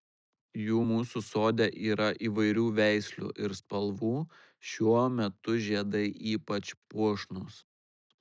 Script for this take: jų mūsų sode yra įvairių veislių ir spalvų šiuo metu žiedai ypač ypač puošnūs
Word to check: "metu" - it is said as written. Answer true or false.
true